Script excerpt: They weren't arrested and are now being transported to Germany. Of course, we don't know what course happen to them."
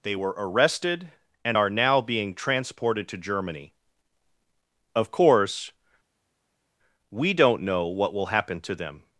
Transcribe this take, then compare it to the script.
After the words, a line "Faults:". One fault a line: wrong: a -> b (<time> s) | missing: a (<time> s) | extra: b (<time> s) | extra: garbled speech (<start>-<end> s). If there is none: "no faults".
They were arrested and are now being transported to Germany. Of course, we don't know what will happen to them."
Faults:
wrong: weren't -> were (0.1 s)
wrong: course -> will (8.1 s)